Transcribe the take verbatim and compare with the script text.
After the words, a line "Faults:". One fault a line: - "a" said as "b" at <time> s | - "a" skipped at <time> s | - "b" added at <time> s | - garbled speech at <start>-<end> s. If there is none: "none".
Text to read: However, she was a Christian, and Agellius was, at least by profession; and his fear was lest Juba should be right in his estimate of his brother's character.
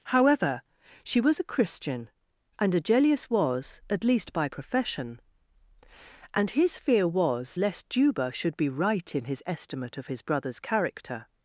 However, she was a Christian, and Agellius was, at least by profession; and his fear was lest Juba should be right in his estimate of his brother's character.
Faults:
none